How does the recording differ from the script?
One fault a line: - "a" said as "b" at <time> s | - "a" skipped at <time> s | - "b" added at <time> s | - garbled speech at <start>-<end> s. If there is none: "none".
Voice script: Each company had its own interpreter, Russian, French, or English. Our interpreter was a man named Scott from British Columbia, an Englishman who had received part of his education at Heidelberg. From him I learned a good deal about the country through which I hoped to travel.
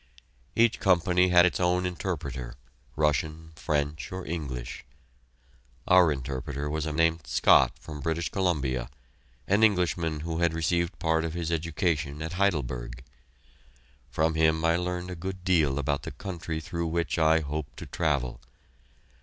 - "man" skipped at 6.9 s